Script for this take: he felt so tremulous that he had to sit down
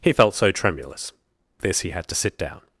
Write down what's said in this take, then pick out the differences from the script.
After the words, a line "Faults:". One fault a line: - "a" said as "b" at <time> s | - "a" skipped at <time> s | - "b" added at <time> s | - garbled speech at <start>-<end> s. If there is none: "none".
he felt so tremulous this he had to sit down
Faults:
- "that" said as "this" at 1.6 s